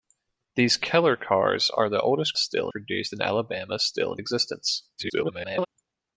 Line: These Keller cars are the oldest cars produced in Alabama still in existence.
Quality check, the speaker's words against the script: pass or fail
fail